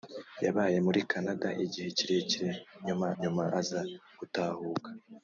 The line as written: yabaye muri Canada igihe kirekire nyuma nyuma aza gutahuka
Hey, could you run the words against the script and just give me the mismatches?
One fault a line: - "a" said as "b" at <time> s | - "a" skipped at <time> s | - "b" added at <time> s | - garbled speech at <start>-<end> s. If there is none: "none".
none